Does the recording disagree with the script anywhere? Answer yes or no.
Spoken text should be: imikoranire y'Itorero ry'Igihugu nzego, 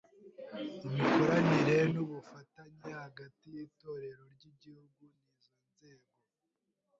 yes